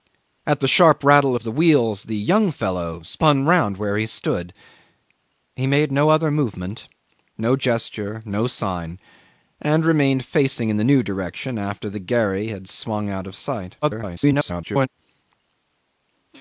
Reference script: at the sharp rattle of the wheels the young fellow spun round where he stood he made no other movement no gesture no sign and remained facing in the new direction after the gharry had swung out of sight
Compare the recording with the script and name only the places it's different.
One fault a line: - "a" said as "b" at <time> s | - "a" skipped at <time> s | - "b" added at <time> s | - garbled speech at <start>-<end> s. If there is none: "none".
- garbled speech at 13.8-14.9 s